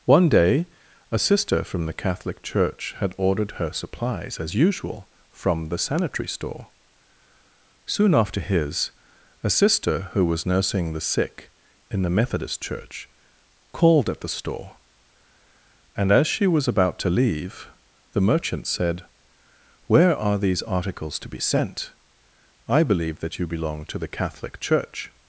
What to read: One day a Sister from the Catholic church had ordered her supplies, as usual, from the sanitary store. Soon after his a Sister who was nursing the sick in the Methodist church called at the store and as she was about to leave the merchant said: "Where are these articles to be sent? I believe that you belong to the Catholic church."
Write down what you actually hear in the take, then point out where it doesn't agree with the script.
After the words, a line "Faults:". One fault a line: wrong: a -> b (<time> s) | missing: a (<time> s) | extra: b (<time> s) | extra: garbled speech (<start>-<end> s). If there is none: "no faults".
One day a Sister from the Catholic church had ordered her supplies, as usual, from the sanitary store. Soon after his a Sister who was nursing the sick in the Methodist church called at the store and as she was about to leave the merchant said: "Where are these articles to be sent? I believe that you belong to the Catholic church."
Faults:
no faults